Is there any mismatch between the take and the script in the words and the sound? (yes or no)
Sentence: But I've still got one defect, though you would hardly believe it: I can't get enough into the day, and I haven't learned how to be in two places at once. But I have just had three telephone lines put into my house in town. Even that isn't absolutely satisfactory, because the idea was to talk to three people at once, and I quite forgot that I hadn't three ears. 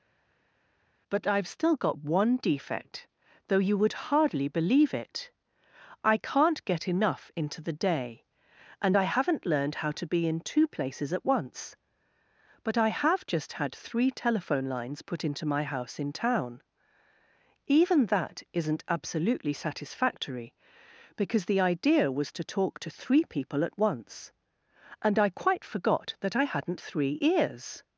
no